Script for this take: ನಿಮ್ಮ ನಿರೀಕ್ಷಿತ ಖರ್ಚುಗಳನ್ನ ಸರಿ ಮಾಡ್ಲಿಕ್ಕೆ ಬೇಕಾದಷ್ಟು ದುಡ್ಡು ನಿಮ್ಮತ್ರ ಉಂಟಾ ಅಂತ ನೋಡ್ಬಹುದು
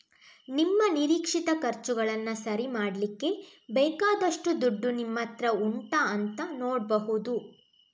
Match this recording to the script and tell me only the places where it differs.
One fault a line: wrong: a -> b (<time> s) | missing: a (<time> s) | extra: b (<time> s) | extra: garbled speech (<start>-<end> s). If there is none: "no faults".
no faults